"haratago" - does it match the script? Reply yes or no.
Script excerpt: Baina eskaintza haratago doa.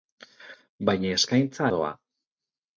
no